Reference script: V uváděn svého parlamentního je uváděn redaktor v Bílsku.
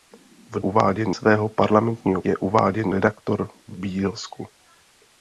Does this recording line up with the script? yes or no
yes